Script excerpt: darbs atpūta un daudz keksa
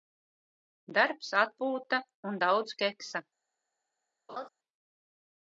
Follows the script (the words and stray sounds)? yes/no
no